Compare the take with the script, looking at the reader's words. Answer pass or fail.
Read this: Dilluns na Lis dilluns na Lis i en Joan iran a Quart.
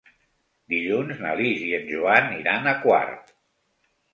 fail